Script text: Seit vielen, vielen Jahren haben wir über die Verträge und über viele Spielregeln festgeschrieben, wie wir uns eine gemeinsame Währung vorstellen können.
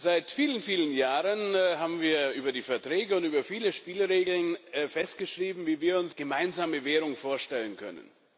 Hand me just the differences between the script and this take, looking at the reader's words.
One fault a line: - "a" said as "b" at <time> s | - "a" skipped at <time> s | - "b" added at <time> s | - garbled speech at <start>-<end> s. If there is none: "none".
- "eine" skipped at 6.2 s